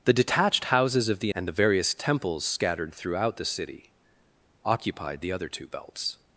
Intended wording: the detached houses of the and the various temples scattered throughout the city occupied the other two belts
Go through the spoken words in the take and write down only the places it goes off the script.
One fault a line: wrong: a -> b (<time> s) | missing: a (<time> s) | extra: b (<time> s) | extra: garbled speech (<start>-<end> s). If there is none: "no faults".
no faults